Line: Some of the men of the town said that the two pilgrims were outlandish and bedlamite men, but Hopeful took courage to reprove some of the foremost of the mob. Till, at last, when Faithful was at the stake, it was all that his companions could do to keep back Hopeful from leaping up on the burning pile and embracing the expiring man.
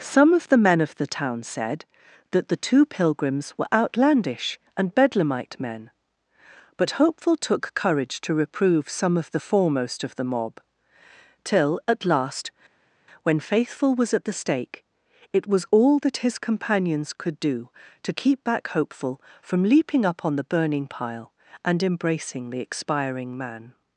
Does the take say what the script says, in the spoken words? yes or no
yes